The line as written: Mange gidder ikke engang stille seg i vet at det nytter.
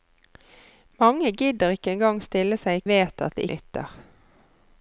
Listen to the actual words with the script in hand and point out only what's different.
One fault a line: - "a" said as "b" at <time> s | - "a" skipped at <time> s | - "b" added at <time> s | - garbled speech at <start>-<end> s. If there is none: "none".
none